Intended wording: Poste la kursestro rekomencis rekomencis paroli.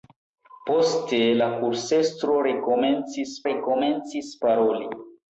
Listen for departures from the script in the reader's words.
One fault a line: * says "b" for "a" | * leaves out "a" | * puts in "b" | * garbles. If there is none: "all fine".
all fine